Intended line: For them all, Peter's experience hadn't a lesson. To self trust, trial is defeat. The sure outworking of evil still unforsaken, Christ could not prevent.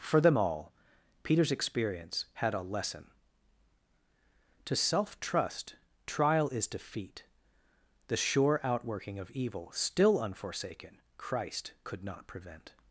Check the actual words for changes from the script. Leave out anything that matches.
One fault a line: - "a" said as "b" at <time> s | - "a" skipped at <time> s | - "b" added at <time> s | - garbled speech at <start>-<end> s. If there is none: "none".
- "hadn't" said as "had" at 2.4 s